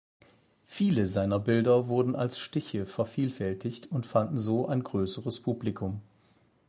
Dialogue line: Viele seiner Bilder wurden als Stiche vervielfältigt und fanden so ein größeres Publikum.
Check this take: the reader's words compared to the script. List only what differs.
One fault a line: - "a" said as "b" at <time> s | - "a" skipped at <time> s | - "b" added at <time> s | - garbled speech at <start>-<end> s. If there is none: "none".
none